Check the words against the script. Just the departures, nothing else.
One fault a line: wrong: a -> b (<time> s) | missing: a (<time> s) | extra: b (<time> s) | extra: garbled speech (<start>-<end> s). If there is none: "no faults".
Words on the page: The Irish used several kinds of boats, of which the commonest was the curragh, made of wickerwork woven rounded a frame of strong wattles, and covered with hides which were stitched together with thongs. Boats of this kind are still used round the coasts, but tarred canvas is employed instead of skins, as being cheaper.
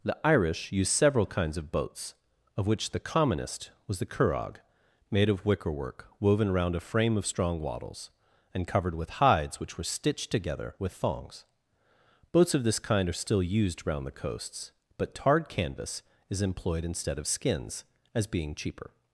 wrong: rounded -> round (6.5 s)